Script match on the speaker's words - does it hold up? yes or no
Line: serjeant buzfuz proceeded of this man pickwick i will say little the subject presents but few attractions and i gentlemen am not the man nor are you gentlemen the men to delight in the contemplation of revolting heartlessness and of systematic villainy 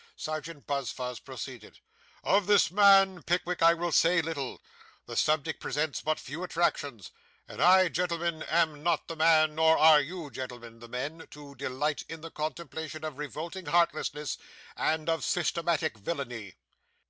yes